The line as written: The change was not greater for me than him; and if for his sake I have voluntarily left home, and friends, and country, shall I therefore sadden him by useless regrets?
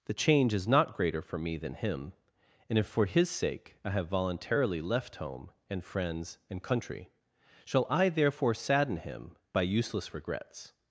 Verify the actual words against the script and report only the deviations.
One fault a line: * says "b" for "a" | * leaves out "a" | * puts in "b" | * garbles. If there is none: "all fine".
* says "is" for "was"